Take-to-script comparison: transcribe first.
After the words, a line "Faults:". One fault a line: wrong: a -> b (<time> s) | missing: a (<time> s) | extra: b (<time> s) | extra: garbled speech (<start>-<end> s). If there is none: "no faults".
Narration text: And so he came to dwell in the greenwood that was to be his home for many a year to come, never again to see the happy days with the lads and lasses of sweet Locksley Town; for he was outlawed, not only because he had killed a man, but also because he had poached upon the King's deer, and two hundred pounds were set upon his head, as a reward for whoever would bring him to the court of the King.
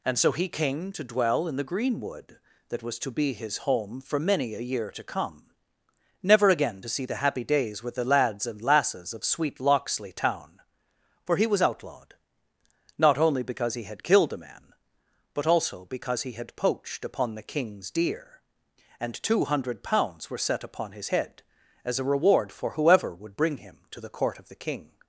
And so he came to dwell in the greenwood that was to be his home for many a year to come, never again to see the happy days with the lads and lasses of sweet Locksley Town; for he was outlawed, not only because he had killed a man, but also because he had poached upon the King's deer, and two hundred pounds were set upon his head, as a reward for whoever would bring him to the court of the King.
Faults:
no faults